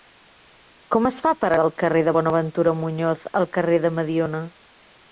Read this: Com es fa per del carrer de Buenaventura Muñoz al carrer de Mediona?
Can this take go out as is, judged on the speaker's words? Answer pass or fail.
pass